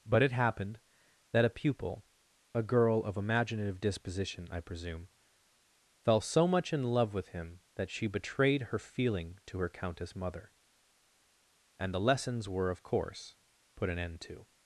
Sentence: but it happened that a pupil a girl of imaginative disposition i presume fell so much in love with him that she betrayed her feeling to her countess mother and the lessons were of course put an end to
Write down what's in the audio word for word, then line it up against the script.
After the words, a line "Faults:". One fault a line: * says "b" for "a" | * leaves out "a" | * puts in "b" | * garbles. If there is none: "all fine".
but it happened that a pupil a girl of imaginative disposition i presume fell so much in love with him that she betrayed her feeling to her countess mother and the lessons were of course put an end to
Faults:
all fine